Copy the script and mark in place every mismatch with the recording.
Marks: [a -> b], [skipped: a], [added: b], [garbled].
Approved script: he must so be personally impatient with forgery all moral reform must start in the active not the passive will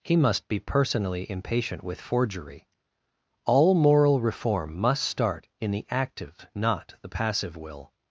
he must [skipped: so] be personally impatient with forgery all moral reform must start in the active not the passive will